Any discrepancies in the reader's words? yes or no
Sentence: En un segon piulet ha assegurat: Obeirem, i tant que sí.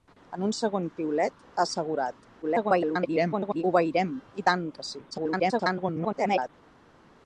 yes